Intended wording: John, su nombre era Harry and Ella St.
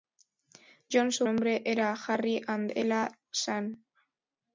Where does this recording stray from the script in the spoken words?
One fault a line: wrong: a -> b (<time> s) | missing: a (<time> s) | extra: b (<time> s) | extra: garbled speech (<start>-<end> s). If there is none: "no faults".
no faults